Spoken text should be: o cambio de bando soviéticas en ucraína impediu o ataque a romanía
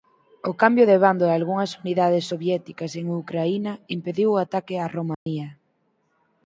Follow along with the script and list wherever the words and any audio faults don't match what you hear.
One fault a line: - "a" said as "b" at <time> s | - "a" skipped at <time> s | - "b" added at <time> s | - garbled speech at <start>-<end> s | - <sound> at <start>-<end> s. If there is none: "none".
- "dalgunhas unidades" added at 1.3 s
- dropout at 5.1-5.3 s